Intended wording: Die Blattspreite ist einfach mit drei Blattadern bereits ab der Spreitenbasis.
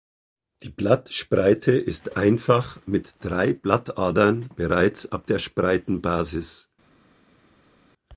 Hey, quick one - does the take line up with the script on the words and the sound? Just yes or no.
yes